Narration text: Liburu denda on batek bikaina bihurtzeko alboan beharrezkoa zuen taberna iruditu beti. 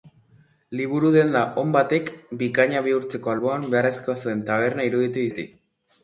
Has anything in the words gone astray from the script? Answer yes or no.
no